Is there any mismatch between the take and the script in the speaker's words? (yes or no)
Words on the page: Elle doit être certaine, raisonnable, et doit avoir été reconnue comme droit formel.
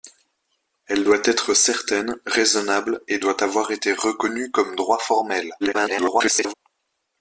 yes